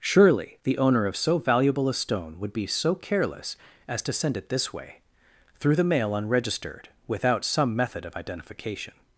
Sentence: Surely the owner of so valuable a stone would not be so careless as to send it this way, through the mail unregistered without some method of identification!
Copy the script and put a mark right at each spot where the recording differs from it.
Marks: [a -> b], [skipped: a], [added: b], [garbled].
Surely the owner of so valuable a stone would [skipped: not] be so careless as to send it this way, through the mail unregistered without some method of identification!